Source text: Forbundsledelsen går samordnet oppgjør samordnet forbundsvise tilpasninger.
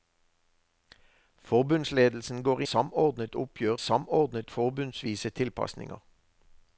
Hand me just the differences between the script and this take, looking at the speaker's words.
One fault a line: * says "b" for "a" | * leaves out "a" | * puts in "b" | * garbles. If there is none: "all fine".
all fine